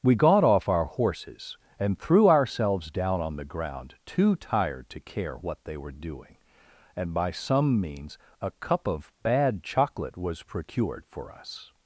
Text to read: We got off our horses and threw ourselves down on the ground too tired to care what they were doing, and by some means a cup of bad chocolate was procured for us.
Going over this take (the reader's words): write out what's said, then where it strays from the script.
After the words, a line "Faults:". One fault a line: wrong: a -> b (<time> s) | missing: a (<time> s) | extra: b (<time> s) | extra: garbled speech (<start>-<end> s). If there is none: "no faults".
We got off our horses and threw ourselves down on the ground too tired to care what they were doing, and by some means a cup of bad chocolate was procured for us.
Faults:
no faults